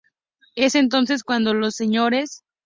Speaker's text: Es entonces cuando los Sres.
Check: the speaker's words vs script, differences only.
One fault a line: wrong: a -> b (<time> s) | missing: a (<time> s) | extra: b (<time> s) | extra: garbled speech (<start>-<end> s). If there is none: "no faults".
no faults